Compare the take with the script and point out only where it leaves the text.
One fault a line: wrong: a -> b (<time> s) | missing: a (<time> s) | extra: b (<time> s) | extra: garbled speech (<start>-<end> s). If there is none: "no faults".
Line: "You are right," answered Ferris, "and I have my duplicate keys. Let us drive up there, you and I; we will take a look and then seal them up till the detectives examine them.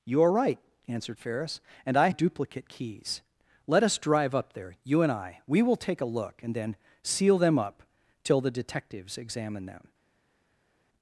missing: have my (2.1 s)